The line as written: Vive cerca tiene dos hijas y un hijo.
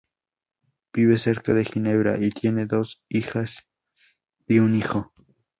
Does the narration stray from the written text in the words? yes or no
yes